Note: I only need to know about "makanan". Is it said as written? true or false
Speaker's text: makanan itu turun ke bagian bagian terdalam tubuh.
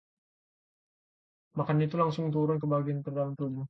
true